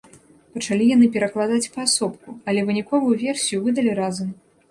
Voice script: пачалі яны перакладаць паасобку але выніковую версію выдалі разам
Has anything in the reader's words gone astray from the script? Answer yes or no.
no